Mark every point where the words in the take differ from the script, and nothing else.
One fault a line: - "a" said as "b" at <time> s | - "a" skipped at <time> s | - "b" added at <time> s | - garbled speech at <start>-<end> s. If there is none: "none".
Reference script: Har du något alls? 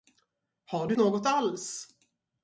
none